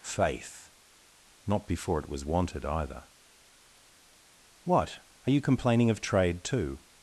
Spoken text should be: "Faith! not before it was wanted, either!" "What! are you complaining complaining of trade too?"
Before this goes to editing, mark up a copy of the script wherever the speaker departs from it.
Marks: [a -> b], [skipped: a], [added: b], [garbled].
"Faith! not before it was wanted, either!" "What! are you complaining [skipped: complaining] of trade too?"